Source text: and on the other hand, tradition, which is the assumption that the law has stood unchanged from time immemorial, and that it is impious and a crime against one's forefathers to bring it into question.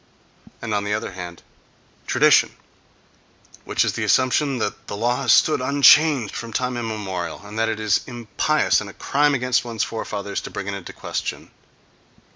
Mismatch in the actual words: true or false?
false